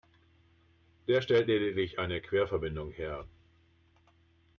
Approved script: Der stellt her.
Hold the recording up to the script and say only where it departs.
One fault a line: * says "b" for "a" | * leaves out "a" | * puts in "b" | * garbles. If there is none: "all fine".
* puts in "lediglich eine Querverbindung"